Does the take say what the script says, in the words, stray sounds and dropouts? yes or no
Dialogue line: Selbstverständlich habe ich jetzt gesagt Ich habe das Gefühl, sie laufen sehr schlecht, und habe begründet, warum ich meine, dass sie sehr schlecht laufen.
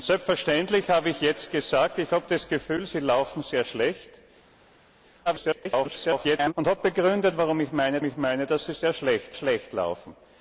no